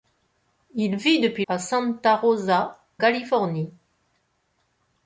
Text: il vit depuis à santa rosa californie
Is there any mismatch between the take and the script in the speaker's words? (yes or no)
no